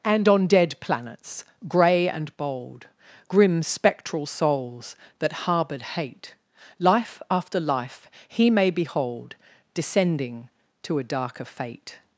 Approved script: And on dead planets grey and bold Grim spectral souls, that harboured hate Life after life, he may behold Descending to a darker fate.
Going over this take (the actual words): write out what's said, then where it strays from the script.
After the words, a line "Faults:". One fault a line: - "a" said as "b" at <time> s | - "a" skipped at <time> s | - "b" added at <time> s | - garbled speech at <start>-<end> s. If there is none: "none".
And on dead planets grey and bold Grim spectral souls, that harboured hate Life after life, he may behold Descending to a darker fate.
Faults:
none